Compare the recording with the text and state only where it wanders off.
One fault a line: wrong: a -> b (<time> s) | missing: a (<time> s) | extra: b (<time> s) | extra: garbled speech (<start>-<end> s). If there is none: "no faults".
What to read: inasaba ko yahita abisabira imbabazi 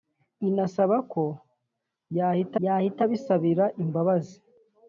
extra: yahita (2.6 s)